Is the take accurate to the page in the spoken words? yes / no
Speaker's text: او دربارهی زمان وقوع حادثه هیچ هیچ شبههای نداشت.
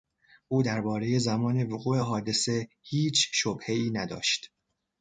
no